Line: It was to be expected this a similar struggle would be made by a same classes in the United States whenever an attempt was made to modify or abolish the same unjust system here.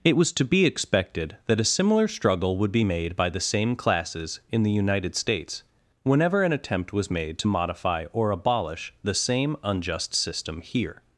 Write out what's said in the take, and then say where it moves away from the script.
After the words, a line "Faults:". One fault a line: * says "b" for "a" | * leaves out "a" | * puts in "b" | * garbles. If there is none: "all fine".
It was to be expected that a similar struggle would be made by the same classes in the United States whenever an attempt was made to modify or abolish the same unjust system here.
Faults:
* says "that" for "this"
* says "the" for "a"